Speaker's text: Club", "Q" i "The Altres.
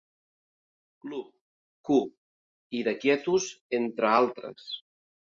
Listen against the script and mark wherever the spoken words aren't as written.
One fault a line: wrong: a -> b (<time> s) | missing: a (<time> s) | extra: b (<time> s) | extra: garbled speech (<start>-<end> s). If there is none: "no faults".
extra: Quietus entre (3.0 s)